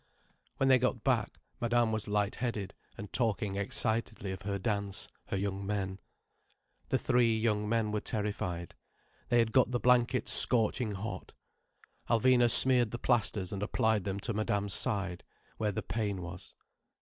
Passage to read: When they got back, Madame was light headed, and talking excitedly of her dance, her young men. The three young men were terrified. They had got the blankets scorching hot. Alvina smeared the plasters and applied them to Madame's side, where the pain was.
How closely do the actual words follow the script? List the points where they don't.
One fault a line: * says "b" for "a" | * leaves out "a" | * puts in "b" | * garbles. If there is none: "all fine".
all fine